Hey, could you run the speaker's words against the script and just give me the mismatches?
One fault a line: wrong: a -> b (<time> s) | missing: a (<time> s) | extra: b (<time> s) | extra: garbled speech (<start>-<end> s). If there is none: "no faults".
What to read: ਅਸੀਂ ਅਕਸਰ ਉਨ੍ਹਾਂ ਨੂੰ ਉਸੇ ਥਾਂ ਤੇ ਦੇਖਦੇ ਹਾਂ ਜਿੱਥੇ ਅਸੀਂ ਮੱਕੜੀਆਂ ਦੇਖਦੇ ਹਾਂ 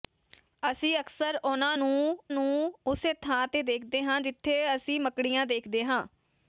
extra: ਨੂੰ (2.3 s)